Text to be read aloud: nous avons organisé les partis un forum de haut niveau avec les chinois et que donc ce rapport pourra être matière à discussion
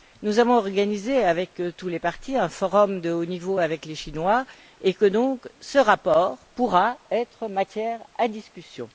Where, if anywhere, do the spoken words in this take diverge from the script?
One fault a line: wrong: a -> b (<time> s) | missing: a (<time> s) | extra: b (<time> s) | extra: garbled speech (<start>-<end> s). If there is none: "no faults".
extra: avec tous (1.2 s)